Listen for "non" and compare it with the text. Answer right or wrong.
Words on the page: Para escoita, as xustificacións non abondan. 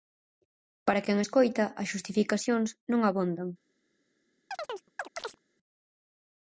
right